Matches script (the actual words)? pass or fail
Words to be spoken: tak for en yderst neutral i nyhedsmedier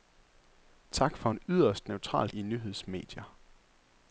pass